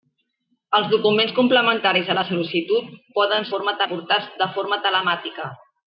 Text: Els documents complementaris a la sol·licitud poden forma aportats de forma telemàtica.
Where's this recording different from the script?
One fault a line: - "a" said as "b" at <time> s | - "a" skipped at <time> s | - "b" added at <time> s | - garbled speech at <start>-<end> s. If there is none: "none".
none